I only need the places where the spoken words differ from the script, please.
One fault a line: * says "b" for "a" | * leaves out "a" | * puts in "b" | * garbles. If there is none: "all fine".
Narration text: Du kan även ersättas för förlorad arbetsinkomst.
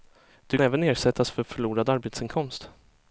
* leaves out "kan"